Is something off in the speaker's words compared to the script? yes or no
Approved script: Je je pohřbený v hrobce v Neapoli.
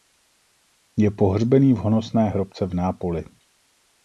yes